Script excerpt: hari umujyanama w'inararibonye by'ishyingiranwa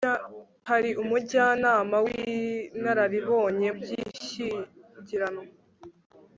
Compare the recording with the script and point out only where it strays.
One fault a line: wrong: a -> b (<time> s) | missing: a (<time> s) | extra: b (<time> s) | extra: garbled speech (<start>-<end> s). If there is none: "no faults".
no faults